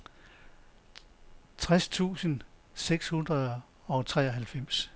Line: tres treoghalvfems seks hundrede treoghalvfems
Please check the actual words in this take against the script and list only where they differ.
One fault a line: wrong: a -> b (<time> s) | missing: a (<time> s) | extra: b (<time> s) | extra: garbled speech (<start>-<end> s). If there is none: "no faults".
wrong: treoghalvfems -> tusind (1.9 s)
extra: og (3.8 s)